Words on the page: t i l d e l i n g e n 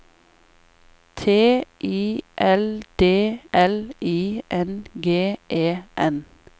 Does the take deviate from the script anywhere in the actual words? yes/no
yes